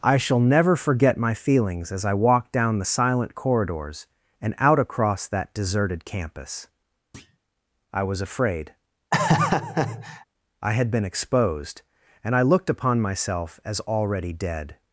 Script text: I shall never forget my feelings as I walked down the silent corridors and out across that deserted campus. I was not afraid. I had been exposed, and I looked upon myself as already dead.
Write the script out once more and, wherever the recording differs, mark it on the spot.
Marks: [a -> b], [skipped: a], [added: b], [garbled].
I shall never forget my feelings as I walked down the silent corridors and out across that deserted campus. I was [skipped: not] afraid. I had been exposed, and I looked upon myself as already dead.